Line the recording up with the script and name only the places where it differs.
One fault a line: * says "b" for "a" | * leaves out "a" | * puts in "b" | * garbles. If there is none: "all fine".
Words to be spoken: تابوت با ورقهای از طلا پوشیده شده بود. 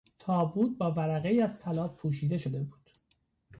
all fine